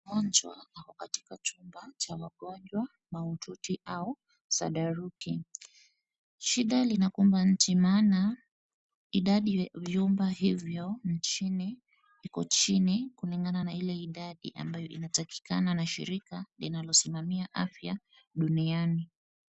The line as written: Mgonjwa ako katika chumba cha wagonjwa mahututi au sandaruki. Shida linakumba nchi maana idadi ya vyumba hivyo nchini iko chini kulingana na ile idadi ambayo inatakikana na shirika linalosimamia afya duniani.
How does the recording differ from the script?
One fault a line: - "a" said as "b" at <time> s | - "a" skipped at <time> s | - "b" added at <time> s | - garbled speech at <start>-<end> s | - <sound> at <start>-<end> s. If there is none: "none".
- dropout at 5.2-5.2 s